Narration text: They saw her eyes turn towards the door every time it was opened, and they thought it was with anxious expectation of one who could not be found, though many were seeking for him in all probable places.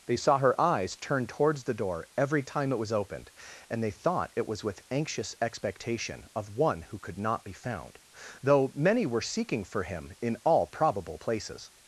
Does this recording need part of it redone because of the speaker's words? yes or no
no